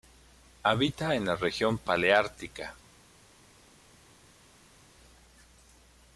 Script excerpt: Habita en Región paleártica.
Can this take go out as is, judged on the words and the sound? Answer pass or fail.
fail